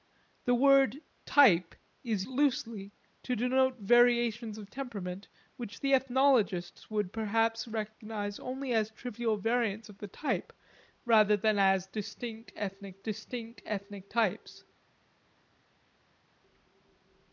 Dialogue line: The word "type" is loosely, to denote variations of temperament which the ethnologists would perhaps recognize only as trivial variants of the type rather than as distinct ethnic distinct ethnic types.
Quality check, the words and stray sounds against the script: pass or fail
pass